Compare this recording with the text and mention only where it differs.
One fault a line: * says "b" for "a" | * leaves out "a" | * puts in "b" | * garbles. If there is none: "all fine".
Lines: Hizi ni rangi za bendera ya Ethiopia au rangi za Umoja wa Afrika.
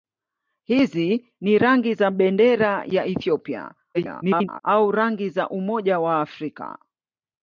* garbles